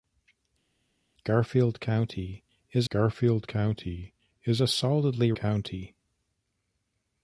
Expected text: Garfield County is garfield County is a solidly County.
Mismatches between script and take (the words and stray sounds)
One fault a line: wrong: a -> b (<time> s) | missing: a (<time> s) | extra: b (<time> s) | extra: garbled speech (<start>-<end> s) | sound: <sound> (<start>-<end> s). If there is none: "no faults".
no faults